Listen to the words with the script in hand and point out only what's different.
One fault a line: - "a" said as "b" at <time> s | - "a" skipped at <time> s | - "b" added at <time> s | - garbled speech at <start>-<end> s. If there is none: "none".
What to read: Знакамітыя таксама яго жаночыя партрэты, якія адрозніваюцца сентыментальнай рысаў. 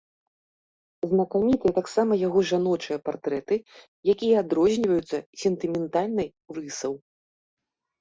none